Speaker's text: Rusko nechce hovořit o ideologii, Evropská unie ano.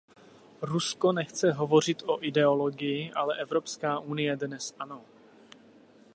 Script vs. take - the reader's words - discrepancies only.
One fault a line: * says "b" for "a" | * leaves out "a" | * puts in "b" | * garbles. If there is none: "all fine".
* puts in "ale"
* puts in "dnes"